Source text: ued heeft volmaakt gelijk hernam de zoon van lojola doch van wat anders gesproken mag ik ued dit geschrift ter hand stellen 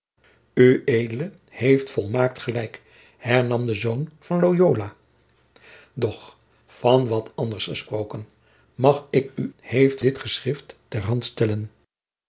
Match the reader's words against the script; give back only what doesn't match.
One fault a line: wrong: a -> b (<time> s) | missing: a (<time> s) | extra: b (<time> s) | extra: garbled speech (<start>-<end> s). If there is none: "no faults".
wrong: ued -> heeft (9.6 s)